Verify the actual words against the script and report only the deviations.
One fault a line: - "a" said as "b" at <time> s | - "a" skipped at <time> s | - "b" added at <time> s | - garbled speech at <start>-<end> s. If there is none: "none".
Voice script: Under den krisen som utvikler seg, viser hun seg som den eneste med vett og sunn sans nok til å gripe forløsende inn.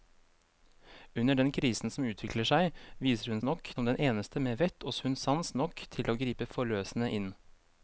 - "seg" said as "nok" at 3.4 s